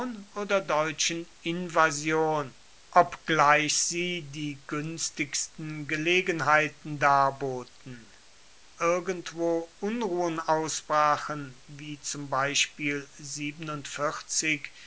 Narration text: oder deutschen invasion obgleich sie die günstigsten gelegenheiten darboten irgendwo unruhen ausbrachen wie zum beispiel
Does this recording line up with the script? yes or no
yes